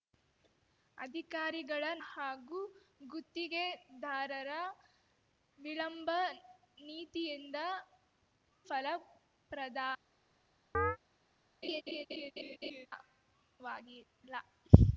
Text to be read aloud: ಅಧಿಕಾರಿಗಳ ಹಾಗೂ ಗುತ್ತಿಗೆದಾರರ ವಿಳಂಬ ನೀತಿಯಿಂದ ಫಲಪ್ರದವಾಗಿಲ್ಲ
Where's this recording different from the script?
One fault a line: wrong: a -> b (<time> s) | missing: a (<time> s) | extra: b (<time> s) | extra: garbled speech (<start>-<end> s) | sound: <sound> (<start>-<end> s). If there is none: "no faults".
sound: chirp (10.7-11.0 s)
sound: laugh (11.6-12.9 s)